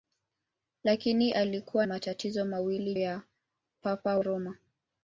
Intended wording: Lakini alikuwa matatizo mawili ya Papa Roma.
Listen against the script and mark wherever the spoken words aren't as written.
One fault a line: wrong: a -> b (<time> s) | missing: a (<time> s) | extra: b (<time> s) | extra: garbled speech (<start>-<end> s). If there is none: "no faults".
no faults